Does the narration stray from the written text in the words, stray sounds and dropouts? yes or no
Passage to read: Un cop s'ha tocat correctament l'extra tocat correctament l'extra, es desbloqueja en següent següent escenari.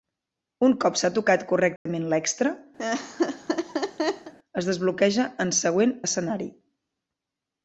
yes